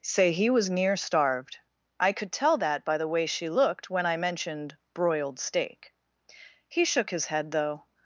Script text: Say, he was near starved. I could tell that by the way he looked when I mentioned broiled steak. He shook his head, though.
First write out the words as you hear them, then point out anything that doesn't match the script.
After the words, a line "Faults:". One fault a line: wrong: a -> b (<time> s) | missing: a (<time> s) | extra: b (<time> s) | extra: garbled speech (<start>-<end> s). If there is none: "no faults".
Say, he was near starved. I could tell that by the way she looked when I mentioned broiled steak. He shook his head, though.
Faults:
wrong: he -> she (3.2 s)